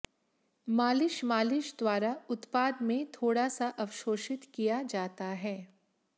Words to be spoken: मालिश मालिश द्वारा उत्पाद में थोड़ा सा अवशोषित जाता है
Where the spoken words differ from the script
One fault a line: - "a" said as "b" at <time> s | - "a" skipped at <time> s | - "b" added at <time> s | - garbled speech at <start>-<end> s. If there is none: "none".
- "किया" added at 4.5 s